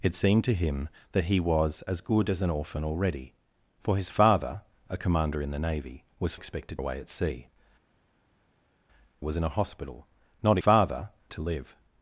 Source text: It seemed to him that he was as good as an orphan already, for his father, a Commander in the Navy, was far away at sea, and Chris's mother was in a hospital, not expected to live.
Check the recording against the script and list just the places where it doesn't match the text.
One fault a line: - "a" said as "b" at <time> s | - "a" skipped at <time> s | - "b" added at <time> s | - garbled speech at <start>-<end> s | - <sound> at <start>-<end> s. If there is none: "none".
- "far" said as "expected" at 6.3 s
- "and Chris's mother" skipped at 7.5 s
- "expected" said as "father" at 10.6 s